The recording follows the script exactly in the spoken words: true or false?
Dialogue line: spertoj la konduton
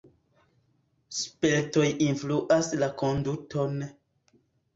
false